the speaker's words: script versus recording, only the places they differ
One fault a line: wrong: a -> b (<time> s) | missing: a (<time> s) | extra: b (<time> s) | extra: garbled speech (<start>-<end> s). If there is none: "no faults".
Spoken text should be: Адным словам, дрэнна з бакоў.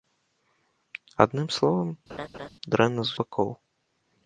no faults